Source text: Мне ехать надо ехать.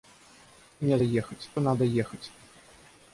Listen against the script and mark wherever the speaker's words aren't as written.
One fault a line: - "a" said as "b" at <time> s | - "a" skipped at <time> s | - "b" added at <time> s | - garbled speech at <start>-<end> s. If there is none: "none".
none